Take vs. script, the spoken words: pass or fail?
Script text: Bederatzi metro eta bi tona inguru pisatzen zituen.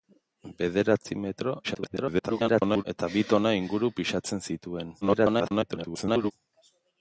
fail